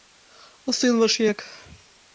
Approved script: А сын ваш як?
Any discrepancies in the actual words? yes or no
no